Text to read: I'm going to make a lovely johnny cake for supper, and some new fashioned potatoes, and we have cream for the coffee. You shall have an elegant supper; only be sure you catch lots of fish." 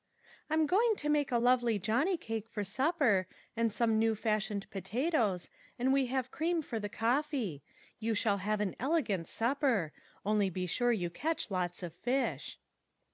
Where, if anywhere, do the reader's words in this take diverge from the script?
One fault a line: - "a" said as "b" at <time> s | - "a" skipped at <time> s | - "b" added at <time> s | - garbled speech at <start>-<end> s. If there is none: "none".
none